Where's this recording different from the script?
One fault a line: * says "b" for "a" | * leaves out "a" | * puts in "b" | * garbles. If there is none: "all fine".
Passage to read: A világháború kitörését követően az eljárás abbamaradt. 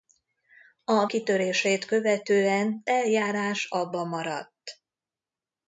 * leaves out "világháború"
* leaves out "az"